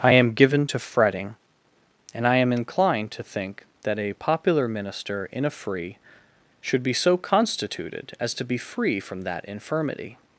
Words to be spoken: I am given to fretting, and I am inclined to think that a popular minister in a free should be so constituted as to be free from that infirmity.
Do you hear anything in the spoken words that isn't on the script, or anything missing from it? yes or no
no